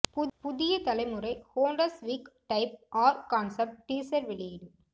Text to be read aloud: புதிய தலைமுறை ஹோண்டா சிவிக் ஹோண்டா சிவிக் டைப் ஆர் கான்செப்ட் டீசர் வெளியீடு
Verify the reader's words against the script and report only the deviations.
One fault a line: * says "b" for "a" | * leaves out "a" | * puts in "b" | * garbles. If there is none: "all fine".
* leaves out "ஹோண்டா சிவிக்"